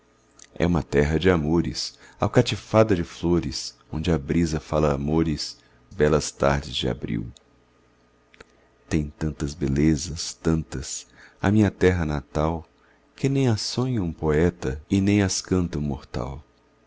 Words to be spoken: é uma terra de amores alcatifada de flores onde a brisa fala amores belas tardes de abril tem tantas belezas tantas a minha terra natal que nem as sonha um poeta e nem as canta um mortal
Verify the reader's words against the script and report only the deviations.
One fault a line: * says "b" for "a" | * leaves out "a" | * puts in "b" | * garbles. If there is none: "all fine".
all fine